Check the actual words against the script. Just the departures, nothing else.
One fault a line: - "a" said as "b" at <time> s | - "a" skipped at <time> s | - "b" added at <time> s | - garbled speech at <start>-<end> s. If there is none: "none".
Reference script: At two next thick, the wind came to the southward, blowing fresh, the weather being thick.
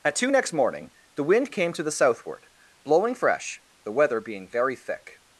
- "thick" said as "morning" at 0.5 s
- "very" added at 4.5 s